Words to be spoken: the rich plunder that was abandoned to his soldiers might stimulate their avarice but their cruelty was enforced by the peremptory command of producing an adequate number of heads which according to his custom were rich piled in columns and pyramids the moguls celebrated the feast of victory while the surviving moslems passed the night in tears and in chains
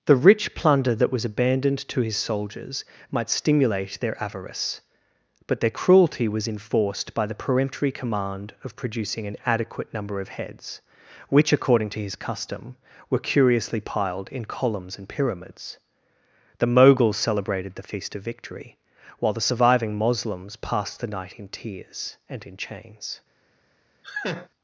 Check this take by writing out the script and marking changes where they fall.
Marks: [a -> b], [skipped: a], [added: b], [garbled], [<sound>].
the rich plunder that was abandoned to his soldiers might stimulate their avarice but their cruelty was enforced by the peremptory command of producing an adequate number of heads which according to his custom were [rich -> curiously] piled in columns and pyramids the moguls celebrated the feast of victory while the surviving moslems passed the night in tears and in chains [laugh]